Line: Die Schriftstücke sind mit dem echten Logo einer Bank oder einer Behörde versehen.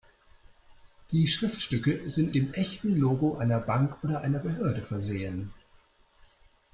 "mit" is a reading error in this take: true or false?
true